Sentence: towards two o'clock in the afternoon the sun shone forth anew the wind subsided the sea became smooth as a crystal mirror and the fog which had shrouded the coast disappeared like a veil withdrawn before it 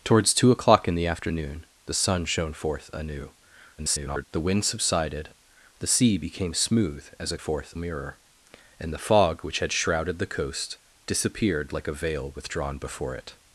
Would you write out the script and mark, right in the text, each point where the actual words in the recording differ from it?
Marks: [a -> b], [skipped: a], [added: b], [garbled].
towards two o'clock in the afternoon the sun shone forth anew [garbled] the wind subsided the sea became smooth as a [crystal -> forth] mirror and the fog which had shrouded the coast disappeared like a veil withdrawn before it